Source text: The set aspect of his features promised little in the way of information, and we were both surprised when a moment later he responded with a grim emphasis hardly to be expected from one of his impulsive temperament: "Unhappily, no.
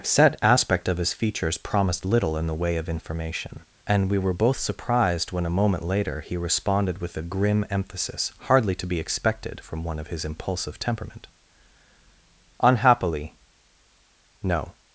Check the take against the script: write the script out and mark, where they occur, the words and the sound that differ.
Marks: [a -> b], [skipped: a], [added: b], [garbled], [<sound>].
[skipped: The] set aspect of his features promised little in the way of information, and we were both surprised when a moment later he responded with a grim emphasis hardly to be expected from one of his impulsive temperament: "Unhappily, no.